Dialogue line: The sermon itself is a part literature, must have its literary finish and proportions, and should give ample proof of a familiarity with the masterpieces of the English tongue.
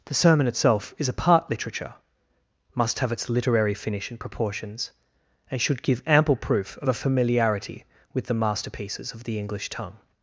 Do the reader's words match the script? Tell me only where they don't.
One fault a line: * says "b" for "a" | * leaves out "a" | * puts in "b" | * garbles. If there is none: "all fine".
all fine